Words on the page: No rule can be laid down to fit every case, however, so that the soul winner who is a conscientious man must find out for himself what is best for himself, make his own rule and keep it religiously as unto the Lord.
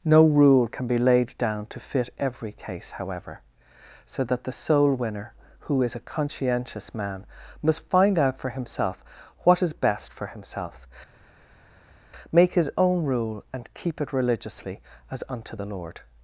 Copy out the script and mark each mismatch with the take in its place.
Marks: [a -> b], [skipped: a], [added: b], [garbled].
No rule can be laid down to fit every case, however, so that the soul winner who is a conscientious man must find out for himself what is best for himself, make his own rule and keep it religiously as unto the Lord.